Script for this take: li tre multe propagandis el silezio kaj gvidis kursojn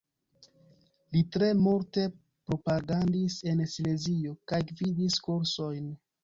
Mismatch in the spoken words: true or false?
true